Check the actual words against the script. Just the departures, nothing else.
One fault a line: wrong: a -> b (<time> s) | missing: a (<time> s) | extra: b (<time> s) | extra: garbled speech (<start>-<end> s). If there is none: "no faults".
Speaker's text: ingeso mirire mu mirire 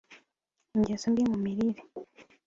wrong: mirire -> mbi (1.1 s)